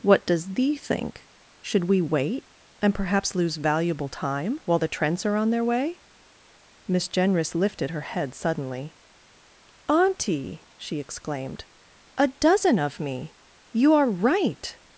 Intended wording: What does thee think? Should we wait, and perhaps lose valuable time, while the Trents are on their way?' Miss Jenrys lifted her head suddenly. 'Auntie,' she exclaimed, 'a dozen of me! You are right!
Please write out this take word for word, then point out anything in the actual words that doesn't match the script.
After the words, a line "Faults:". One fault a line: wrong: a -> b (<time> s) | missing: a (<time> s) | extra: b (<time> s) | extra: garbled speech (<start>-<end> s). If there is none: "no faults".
What does thee think? Should we wait, and perhaps lose valuable time, while the Trents are on their way?' Miss Jenrys lifted her head suddenly. 'Auntie,' she exclaimed, 'a dozen of me! You are right!
Faults:
no faults